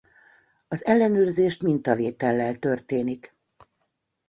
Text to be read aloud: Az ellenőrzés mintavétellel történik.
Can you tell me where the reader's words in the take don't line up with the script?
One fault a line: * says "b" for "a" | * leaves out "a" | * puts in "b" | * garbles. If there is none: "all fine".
all fine